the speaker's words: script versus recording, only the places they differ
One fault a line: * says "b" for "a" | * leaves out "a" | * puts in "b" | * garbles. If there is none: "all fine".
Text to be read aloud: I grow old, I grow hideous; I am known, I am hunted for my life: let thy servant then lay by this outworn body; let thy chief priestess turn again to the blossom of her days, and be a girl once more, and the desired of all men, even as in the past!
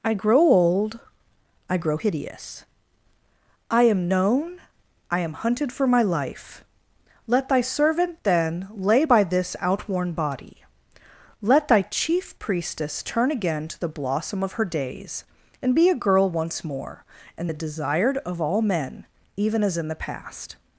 all fine